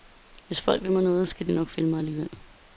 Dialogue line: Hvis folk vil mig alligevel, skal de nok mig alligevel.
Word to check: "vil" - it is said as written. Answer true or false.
true